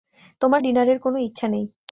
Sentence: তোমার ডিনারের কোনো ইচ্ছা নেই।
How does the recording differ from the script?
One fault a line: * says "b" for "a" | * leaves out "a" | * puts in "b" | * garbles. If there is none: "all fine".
all fine